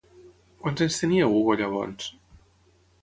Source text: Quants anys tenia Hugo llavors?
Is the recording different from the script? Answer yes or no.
no